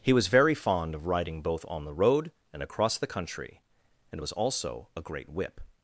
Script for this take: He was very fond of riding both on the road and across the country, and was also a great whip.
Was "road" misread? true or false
false